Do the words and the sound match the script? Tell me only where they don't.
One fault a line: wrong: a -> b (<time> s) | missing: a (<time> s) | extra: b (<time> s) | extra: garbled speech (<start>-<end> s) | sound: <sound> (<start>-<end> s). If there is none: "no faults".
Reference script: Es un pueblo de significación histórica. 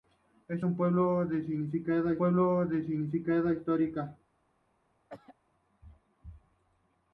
extra: pueblo de significación (2.2 s)
sound: throat clearing (5.1-5.4 s)